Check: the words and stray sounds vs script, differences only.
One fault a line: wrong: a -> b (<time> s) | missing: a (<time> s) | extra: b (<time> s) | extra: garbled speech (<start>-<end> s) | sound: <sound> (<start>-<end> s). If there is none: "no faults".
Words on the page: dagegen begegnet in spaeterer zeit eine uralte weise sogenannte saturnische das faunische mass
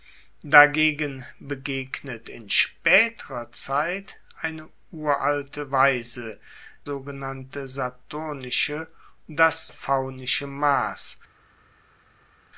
no faults